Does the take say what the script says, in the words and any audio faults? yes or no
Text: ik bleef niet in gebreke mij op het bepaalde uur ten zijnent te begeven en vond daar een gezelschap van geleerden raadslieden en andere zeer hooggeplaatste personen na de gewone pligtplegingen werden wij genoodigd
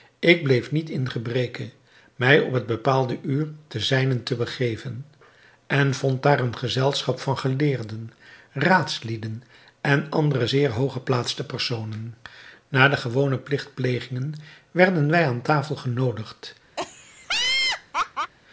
no